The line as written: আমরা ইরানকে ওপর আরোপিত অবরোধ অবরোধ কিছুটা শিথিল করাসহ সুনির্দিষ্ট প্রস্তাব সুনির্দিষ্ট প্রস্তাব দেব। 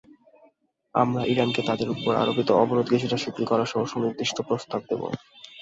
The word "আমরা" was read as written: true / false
true